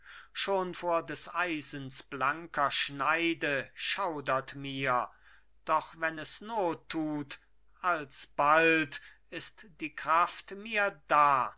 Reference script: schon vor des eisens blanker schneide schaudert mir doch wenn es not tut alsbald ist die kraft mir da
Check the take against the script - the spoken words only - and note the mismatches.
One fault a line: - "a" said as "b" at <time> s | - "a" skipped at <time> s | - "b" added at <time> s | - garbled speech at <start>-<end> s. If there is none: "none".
none